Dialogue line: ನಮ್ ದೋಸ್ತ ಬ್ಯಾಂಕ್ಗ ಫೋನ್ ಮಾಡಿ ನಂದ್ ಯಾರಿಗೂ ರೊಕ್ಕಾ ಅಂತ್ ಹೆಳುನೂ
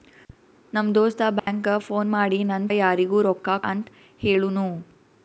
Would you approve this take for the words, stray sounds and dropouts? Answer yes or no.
no